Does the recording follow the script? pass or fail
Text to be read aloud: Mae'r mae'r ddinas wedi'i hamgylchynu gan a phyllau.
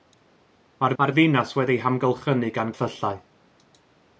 pass